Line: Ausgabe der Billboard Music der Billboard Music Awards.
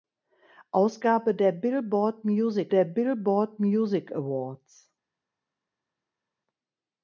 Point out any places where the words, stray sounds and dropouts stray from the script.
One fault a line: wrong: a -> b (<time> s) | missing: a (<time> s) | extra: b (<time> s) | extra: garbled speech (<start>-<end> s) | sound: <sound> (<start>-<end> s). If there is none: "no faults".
no faults